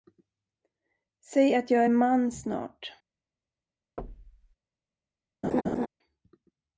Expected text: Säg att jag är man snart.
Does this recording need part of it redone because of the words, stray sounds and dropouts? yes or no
yes